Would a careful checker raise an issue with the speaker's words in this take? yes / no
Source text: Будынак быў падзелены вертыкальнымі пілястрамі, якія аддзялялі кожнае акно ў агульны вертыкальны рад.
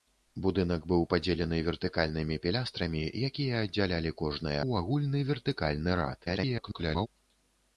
yes